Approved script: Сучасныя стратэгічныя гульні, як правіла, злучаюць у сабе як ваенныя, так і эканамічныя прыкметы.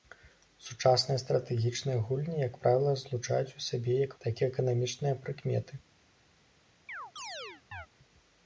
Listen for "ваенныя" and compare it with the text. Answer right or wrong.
wrong